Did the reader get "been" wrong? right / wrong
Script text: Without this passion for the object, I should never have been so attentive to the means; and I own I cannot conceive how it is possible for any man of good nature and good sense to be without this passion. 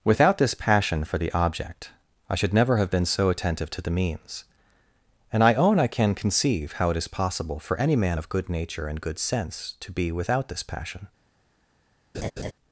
right